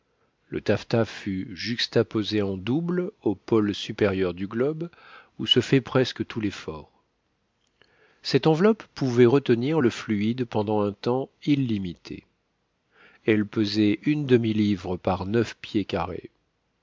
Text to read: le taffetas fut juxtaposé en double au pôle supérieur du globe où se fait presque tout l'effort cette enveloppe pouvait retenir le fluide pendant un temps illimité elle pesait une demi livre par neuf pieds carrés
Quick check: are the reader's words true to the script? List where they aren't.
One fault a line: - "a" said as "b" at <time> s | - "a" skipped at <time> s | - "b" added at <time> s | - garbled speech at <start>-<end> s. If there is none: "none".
none